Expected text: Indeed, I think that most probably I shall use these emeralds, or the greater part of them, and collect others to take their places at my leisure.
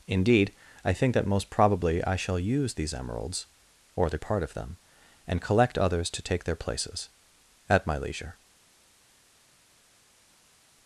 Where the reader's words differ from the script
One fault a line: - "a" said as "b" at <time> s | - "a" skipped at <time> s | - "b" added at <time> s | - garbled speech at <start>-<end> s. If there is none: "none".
- "greater" skipped at 4.2 s